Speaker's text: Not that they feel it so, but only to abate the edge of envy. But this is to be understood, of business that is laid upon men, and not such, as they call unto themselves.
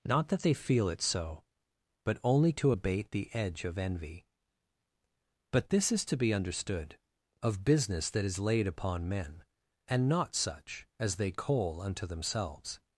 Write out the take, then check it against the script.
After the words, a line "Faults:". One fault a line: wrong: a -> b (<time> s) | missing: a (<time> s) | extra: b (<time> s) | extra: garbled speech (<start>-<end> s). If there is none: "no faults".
Not that they feel it so, but only to abate the edge of envy. But this is to be understood, of business that is laid upon men, and not such, as they coal unto themselves.
Faults:
wrong: call -> coal (11.3 s)